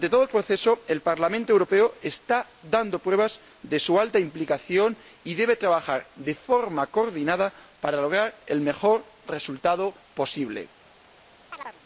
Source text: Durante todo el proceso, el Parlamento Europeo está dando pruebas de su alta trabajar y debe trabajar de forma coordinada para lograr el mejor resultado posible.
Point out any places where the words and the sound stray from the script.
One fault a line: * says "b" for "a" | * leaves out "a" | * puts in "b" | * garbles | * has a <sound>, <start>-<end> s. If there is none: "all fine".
* says "implicación" for "trabajar"
* has a chirp, 11.5-11.8 s